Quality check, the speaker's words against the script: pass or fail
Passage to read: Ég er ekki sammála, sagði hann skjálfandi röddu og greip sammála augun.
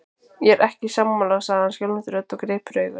fail